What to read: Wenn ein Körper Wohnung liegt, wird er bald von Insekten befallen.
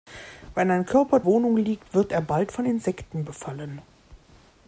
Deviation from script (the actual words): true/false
false